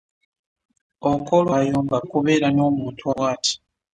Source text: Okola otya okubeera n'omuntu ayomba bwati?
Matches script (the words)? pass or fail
fail